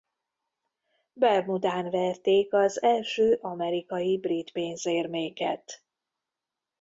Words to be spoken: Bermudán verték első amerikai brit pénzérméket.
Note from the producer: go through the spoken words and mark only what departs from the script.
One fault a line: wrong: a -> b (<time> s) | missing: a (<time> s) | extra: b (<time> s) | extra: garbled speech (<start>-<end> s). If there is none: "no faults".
extra: az (2.5 s)